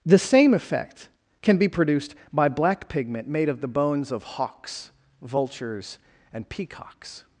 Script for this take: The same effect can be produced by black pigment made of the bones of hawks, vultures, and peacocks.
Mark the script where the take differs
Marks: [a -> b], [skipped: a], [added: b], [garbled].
The same effect can be produced by black pigment made of the bones of hawks, vultures, and peacocks.